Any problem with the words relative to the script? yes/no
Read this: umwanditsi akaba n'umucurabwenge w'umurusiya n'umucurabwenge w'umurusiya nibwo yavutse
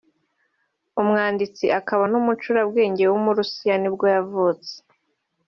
yes